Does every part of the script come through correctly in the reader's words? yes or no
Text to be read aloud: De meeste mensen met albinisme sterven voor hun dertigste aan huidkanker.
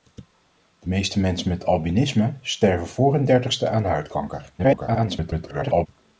no